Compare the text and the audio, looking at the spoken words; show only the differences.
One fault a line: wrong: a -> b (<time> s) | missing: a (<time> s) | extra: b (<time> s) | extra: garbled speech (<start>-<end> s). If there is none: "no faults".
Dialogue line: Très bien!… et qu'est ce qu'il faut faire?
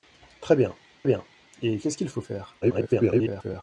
extra: bien (1.0 s)
extra: garbled speech (2.6-3.6 s)